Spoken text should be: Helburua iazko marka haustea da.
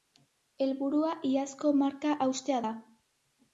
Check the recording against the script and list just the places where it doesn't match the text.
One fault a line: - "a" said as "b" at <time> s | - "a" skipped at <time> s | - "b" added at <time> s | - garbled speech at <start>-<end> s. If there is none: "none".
none